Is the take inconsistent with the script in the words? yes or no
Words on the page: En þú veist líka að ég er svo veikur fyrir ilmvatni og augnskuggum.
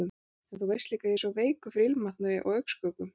no